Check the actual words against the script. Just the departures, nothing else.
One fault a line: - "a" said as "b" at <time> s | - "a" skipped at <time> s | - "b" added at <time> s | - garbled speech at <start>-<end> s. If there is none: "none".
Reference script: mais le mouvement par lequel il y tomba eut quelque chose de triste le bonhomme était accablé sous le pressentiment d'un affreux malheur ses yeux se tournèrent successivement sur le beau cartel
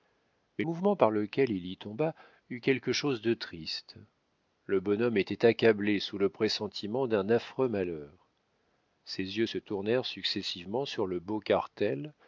- "le" skipped at 0.7 s